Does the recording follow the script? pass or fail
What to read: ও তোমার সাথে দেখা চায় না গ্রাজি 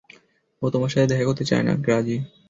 fail